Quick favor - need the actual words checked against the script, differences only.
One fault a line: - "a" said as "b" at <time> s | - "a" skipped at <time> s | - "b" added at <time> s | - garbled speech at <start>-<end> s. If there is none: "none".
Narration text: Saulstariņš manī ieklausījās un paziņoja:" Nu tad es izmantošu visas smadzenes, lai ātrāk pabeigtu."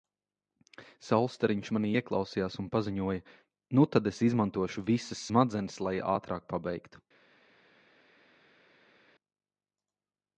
none